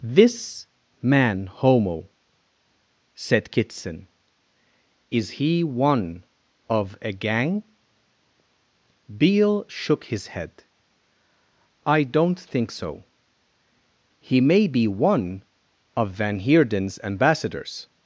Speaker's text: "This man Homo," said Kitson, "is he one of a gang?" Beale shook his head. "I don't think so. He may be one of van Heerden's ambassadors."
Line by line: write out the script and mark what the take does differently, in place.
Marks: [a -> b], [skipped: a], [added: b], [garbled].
"This man Homo," said Kitson, "is he one of a gang?" Beale shook his head. "I don't think so. He may be one of van Heerden's ambassadors."